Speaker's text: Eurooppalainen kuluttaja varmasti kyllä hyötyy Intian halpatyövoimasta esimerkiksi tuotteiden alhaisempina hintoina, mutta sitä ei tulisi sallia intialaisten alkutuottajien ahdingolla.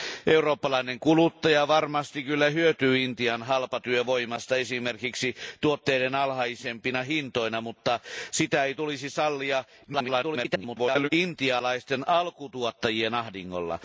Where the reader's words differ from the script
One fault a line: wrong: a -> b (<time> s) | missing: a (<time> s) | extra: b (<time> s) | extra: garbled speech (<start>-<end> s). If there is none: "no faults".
extra: garbled speech (9.8-11.1 s)